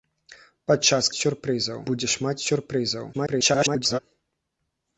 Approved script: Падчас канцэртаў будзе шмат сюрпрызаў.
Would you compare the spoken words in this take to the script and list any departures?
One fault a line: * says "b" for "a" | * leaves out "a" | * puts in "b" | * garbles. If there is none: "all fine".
* says "сюрпрызаў" for "канцэртаў"
* garbles